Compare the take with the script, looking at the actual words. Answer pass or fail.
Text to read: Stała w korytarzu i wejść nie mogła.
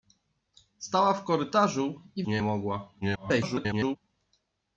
fail